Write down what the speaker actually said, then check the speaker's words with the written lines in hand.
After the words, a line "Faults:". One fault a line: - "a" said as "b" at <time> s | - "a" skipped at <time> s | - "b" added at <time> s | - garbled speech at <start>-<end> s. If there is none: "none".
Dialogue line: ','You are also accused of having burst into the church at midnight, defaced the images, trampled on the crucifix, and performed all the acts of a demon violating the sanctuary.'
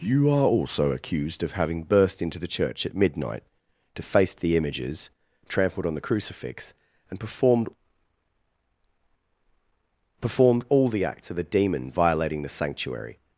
','You are also accused of having burst into the church at midnight, defaced the images, trampled on the crucifix, and performed performed all the acts of a demon violating the sanctuary.'
Faults:
- "performed" added at 10.2 s